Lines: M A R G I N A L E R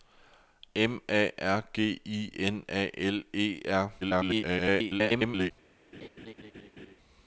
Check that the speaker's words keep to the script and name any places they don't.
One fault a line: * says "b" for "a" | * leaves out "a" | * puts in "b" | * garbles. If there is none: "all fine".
* garbles